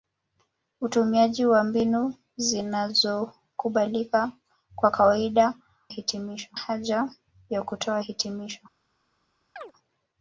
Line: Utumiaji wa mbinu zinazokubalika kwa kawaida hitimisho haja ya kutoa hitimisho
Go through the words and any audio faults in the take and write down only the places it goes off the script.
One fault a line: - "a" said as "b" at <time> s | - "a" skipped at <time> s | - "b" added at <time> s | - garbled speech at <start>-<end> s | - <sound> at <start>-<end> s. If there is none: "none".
- chirp at 9.6-9.7 s